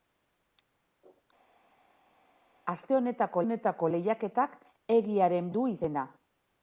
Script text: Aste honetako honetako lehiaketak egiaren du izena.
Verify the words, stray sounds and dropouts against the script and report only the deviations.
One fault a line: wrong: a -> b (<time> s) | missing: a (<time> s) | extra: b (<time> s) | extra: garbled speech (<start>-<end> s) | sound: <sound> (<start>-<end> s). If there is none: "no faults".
no faults